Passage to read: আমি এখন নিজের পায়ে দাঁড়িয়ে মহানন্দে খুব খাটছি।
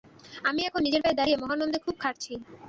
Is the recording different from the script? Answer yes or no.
no